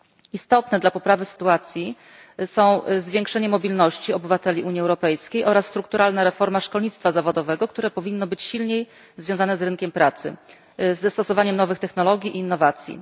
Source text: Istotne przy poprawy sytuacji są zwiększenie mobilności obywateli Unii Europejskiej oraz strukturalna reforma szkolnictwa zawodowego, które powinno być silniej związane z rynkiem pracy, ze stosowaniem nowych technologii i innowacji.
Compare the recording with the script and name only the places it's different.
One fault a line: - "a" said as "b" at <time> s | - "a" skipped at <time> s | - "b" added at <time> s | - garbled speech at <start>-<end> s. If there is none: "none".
- "przy" said as "dla" at 0.8 s